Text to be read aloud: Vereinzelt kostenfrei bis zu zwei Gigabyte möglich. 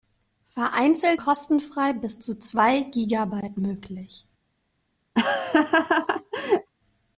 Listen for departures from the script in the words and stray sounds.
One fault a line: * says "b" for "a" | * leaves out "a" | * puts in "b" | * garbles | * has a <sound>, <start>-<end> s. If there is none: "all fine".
* has a laugh, 5.2-6.7 s